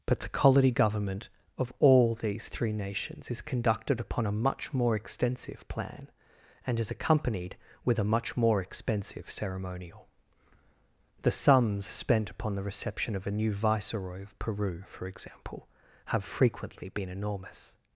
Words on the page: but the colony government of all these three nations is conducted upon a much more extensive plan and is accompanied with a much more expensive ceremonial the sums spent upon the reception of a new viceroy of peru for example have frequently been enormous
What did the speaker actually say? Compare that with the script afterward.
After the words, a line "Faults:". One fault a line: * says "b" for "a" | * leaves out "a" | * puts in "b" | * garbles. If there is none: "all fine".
but the colony government of all these three nations is conducted upon a much more extensive plan and is accompanied with a much more expensive ceremonial the sums spent upon the reception of a new viceroy of peru for example have frequently been enormous
Faults:
all fine